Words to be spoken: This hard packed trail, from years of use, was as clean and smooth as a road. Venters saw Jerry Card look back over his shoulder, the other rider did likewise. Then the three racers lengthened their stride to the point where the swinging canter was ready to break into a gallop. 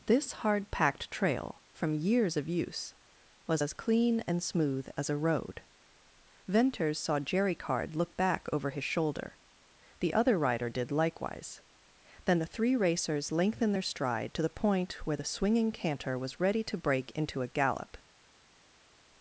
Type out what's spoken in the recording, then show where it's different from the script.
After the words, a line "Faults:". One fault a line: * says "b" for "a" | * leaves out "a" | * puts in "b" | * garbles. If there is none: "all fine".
This hard packed trail, from years of use, was as clean and smooth as a road. Venters saw Jerry Card look back over his shoulder, the other rider did likewise. Then the three racers lengthened their stride to the point where the swinging canter was ready to break into a gallop.
Faults:
all fine